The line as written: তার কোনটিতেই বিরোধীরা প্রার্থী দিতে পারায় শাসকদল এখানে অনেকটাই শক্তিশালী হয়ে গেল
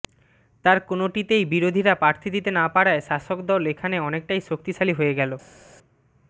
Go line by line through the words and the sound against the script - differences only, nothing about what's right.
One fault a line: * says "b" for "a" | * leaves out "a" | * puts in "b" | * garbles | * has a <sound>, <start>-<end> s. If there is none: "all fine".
* puts in "না"